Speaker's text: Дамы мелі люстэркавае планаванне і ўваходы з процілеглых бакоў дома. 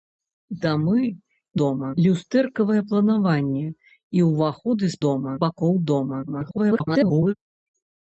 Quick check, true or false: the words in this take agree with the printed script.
false